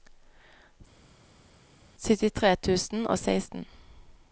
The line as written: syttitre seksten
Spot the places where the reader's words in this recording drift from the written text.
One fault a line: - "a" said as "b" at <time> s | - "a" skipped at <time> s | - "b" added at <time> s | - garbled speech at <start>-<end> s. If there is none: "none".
- "tusen og" added at 2.6 s